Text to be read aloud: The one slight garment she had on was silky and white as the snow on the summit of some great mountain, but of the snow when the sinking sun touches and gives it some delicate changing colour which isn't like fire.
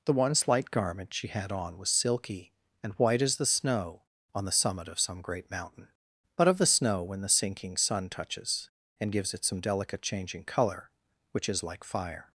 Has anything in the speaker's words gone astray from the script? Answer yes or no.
yes